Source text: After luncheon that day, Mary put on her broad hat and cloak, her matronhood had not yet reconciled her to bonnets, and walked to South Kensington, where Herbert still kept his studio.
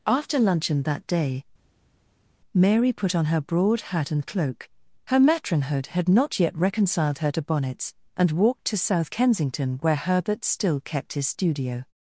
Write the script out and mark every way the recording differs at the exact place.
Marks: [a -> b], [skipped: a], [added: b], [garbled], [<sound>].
After luncheon that day, Mary put on her broad hat and cloak, her matronhood had not yet reconciled her to bonnets, and walked to South Kensington, where Herbert still kept his studio.